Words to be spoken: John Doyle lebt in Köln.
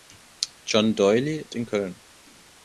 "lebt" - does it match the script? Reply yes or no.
no